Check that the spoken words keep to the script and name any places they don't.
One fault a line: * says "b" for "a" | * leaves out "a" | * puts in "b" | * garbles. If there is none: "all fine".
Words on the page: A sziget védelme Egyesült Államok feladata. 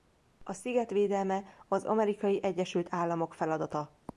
* puts in "az Amerikai"